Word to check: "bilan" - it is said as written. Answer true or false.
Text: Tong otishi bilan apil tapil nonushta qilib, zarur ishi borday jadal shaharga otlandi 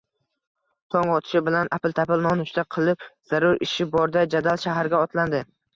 true